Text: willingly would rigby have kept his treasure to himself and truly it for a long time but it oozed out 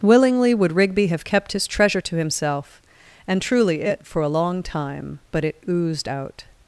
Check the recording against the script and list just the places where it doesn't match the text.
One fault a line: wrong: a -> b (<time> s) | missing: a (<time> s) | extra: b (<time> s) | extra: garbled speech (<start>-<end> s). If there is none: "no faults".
no faults